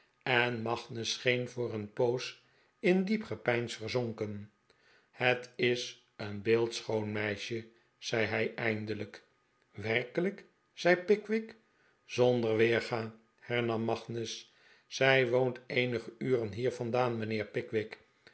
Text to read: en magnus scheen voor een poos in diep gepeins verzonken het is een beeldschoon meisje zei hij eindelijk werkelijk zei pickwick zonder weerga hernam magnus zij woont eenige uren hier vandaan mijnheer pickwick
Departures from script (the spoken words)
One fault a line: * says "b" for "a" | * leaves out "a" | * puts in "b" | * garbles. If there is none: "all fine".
all fine